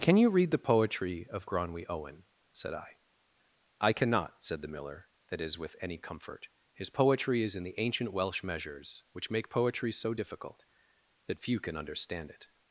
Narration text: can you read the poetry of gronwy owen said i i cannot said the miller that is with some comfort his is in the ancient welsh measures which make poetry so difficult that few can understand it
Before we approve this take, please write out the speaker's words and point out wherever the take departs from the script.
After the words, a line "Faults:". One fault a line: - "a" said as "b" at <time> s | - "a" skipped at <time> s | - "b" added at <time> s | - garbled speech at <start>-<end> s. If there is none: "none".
can you read the poetry of gronwy owen said i i cannot said the miller that is with any comfort his poetry is in the ancient welsh measures which make poetry so difficult that few can understand it
Faults:
- "some" said as "any" at 5.8 s
- "poetry" added at 6.9 s